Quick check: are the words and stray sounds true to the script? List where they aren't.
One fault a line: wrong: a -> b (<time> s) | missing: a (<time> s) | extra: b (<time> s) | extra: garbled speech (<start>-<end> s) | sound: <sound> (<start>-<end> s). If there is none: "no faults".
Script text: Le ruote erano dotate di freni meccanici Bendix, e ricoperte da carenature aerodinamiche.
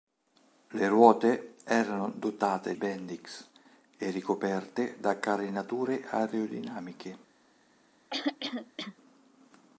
missing: di freni meccanici (2.7 s)
sound: throat clearing (8.1-9.0 s)